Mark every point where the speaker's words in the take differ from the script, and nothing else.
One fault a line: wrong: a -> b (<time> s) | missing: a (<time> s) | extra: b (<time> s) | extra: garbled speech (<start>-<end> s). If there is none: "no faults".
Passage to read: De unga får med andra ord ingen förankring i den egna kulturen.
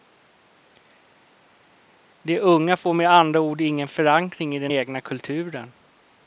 no faults